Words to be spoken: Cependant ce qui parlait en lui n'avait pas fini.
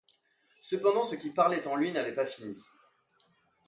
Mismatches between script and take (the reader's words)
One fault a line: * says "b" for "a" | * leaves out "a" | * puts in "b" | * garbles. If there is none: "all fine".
all fine